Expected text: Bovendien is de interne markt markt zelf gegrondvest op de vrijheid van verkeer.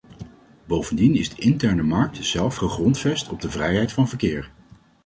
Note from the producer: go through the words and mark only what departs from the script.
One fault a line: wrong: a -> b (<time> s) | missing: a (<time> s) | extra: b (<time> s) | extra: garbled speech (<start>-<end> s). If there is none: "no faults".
missing: markt (2.2 s)